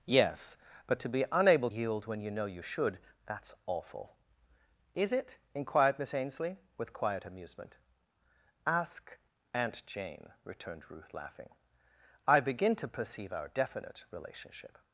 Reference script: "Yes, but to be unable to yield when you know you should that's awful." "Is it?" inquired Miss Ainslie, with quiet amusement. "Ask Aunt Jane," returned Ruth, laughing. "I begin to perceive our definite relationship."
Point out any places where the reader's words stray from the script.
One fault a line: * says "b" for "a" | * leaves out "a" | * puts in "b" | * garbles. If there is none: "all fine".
* leaves out "to"